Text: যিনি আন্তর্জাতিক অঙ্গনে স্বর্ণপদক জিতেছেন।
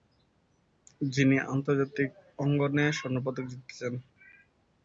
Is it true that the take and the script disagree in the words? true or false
false